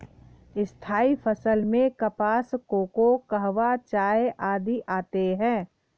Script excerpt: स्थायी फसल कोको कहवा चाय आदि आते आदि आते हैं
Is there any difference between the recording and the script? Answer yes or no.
yes